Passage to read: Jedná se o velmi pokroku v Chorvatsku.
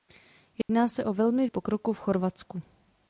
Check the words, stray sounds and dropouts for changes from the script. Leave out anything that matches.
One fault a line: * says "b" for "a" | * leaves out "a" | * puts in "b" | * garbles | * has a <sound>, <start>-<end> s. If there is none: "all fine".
* has a dropout, 0.6-0.7 s